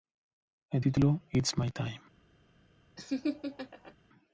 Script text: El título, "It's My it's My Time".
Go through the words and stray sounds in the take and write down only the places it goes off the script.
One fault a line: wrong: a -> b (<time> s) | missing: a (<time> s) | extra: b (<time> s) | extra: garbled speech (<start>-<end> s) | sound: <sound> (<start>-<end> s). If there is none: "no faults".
missing: it's My (1.7 s)
sound: laugh (3.0-3.9 s)